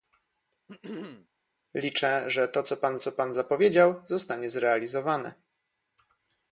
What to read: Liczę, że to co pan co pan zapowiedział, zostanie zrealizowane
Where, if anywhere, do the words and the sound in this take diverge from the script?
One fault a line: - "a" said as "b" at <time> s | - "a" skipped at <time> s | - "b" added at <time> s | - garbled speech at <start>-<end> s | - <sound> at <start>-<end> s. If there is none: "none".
- throat clearing at 0.7-1.3 s